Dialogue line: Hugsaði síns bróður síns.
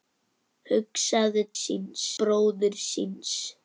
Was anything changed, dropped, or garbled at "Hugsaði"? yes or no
no